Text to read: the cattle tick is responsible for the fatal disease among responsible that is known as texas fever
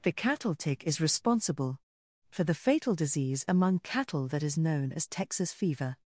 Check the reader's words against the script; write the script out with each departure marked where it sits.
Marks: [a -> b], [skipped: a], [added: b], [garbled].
the cattle tick is responsible for the fatal disease among [responsible -> cattle] that is known as texas fever